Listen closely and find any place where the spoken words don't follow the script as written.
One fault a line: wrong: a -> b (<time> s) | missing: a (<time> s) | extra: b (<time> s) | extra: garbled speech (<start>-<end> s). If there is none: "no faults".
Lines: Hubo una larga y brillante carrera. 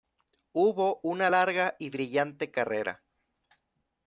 no faults